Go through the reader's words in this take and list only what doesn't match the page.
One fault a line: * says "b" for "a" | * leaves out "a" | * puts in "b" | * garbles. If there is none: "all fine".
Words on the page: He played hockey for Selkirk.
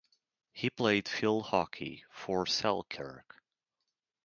* puts in "field"